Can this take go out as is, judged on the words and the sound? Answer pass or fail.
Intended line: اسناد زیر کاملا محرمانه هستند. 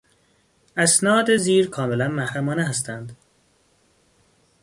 pass